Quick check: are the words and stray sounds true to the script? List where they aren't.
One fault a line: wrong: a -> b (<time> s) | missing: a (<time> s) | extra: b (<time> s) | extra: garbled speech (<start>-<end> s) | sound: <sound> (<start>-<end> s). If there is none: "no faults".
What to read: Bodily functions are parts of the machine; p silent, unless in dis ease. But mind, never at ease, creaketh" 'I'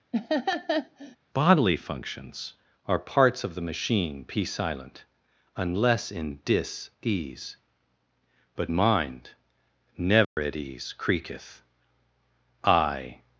sound: laugh (0.1-1.2 s)
sound: dropout (10.2-10.4 s)